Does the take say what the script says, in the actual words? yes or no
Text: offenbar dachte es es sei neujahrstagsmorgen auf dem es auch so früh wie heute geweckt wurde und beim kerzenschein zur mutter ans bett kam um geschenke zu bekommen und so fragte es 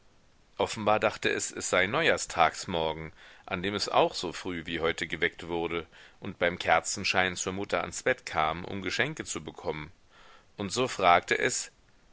no